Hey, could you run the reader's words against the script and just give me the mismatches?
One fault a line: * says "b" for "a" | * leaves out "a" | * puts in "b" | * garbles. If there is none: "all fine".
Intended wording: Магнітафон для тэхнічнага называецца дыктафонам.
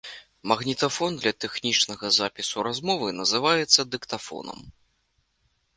* puts in "запісу размовы"